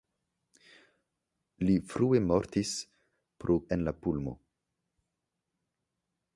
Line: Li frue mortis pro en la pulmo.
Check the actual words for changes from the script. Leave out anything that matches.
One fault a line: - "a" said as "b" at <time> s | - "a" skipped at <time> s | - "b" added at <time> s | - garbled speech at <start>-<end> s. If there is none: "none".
none